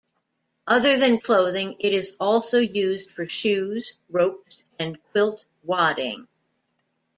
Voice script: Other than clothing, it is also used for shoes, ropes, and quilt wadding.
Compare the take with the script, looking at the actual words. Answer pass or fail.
pass